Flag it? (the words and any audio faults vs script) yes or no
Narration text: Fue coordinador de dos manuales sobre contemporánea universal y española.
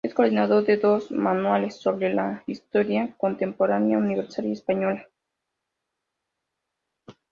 yes